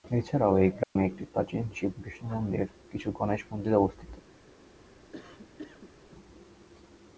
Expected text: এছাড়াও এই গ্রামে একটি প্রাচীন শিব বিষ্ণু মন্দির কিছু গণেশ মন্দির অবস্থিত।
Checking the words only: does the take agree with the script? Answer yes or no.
yes